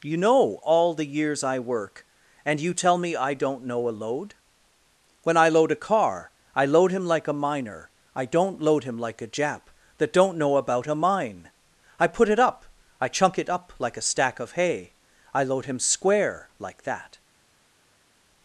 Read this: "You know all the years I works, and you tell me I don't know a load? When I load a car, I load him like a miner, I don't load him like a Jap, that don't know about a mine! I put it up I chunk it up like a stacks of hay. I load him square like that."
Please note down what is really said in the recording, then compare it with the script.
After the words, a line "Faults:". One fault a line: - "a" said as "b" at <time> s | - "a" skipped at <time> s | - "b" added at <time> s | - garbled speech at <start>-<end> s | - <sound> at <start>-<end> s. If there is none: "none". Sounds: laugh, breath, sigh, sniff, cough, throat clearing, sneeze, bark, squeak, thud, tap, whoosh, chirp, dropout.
"You know all the years I work, and you tell me I don't know a load? When I load a car, I load him like a miner, I don't load him like a Jap, that don't know about a mine! I put it up I chunk it up like a stack of hay. I load him square like that."
Faults:
- "works" said as "work" at 1.6 s
- "stacks" said as "stack" at 14.1 s